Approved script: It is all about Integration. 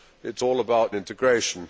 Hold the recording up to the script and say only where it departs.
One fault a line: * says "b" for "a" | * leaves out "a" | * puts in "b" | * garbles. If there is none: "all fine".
all fine